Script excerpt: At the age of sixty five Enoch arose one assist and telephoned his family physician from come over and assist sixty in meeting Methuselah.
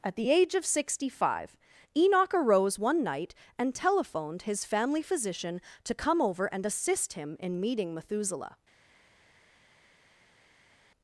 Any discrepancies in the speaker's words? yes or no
yes